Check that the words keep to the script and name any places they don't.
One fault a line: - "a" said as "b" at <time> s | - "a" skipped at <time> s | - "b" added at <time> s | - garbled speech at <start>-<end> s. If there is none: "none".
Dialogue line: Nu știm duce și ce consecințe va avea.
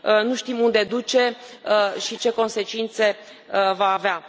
- "unde" added at 0.6 s